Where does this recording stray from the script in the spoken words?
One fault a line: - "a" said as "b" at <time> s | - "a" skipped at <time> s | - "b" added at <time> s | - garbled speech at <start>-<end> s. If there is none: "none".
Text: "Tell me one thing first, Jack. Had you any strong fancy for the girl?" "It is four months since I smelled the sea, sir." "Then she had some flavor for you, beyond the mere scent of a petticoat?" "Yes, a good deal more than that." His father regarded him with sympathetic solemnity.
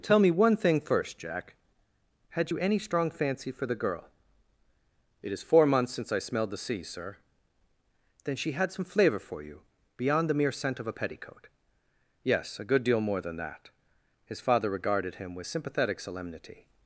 none